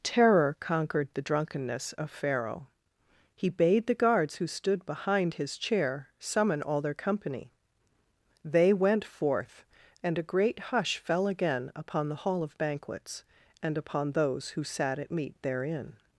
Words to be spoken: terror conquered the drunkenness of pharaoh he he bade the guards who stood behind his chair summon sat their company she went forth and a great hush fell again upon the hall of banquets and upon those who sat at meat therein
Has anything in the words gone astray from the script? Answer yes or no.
yes